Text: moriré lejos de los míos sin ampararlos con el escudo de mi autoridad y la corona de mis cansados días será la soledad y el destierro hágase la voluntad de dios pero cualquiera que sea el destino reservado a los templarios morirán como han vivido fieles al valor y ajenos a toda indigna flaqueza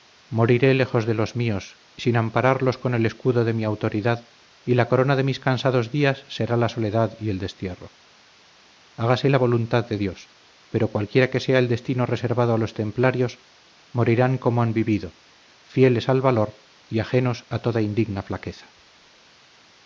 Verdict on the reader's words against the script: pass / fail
pass